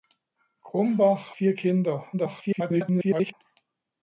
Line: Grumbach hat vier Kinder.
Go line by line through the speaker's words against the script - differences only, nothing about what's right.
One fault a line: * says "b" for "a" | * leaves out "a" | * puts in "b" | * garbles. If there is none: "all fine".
* leaves out "hat"
* garbles